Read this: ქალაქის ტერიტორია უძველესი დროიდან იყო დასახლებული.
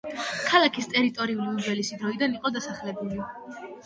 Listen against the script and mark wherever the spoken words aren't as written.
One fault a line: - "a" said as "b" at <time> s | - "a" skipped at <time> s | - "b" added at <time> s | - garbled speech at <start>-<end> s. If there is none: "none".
none